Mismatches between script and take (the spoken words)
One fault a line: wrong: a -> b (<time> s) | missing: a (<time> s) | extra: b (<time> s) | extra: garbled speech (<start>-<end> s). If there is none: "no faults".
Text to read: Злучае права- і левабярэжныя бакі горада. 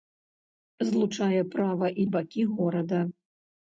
missing: левабярэжныя (2.1 s)